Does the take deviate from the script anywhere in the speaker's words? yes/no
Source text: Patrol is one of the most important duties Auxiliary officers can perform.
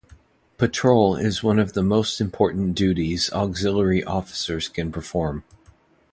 no